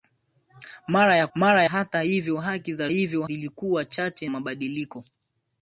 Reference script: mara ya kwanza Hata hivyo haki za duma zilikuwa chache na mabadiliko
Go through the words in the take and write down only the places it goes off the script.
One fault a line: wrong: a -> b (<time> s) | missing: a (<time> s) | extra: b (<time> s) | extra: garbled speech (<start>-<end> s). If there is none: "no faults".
wrong: kwanza -> mara (1.3 s)
wrong: duma -> hivyo (2.9 s)
missing: na (4.3 s)